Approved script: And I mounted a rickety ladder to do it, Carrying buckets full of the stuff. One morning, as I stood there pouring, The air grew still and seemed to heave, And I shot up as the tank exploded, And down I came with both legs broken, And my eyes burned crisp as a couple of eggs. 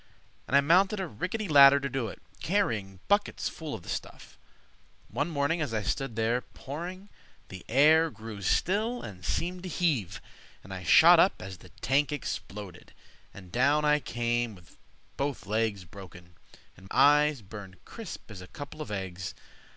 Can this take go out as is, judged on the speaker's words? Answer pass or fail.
fail